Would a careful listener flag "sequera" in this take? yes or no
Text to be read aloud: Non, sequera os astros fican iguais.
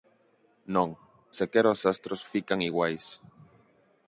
no